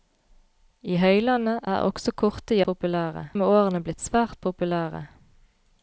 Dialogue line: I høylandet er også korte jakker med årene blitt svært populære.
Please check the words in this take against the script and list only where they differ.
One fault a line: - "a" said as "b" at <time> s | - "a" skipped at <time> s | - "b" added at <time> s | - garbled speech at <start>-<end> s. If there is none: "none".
- "jakker" said as "populære" at 2.7 s